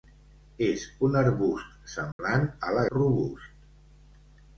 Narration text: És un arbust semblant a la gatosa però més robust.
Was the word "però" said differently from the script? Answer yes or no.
yes